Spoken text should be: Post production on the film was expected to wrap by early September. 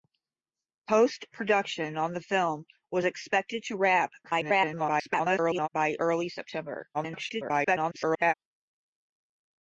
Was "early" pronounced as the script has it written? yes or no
yes